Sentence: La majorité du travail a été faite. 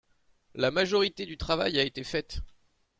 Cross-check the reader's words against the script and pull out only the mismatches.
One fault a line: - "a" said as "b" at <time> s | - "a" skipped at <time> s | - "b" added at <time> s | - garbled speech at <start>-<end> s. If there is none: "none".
none